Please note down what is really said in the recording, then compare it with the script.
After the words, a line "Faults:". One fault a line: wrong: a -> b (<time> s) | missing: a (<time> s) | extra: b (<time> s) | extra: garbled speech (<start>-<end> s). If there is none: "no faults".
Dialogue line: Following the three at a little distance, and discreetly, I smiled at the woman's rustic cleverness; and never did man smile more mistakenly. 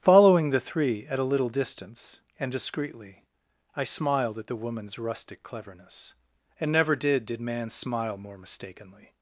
Following the three at a little distance, and discreetly, I smiled at the woman's rustic cleverness; and never did did man smile more mistakenly.
Faults:
extra: did (7.3 s)